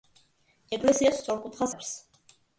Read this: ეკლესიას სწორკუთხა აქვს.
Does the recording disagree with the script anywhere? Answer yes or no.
no